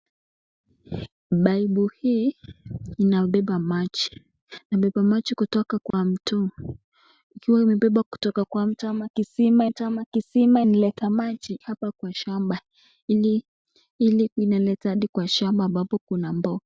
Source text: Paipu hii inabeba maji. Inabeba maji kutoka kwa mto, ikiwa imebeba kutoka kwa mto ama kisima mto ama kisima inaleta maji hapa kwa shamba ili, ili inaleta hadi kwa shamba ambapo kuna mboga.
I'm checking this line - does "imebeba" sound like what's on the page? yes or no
yes